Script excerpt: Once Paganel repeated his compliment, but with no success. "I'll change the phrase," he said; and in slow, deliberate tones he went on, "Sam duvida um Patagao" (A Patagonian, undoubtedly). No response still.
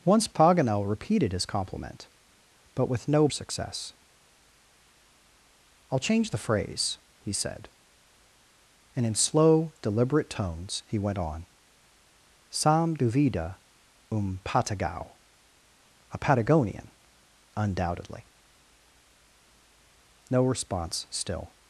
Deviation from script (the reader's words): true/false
false